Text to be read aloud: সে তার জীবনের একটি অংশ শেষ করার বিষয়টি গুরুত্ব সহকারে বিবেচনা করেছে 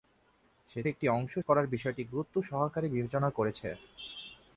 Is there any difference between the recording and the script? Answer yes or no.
yes